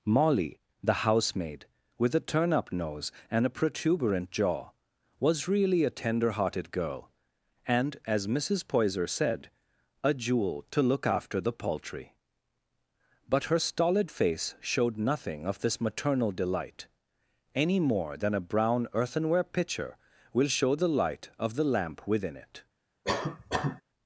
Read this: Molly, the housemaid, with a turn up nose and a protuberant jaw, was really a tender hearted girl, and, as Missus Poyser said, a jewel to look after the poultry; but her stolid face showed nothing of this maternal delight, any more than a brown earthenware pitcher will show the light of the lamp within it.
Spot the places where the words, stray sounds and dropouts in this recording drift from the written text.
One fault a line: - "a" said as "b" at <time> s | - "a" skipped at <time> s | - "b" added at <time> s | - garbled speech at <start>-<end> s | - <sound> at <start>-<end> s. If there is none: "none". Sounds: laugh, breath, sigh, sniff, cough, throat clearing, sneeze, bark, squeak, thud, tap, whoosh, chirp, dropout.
- cough at 23.0-23.8 s